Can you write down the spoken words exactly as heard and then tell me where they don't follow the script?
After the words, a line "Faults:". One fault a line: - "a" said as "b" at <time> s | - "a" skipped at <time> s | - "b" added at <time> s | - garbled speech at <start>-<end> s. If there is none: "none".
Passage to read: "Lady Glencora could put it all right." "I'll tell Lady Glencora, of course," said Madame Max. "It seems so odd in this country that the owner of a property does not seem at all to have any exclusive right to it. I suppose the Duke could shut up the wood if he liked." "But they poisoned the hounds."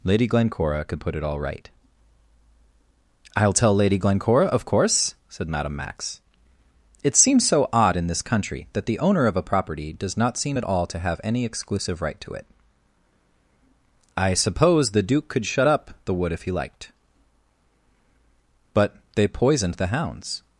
"Lady Glencora could put it all right." "I'll tell Lady Glencora, of course," said Madame Max. "It seems so odd in this country that the owner of a property does not seem at all to have any exclusive right to it. I suppose the Duke could shut up the wood if he liked." "But they poisoned the hounds."
Faults:
none